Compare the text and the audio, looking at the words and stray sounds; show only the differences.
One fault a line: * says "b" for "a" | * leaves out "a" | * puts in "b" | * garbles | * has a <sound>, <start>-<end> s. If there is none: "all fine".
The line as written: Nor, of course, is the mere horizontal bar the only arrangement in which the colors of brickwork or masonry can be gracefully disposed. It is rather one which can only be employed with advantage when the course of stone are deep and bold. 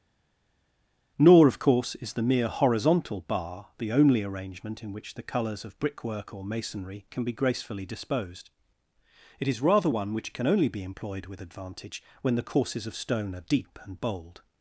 * says "courses" for "course"